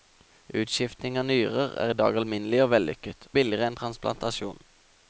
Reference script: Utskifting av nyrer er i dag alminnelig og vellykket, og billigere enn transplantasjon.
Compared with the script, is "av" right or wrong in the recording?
right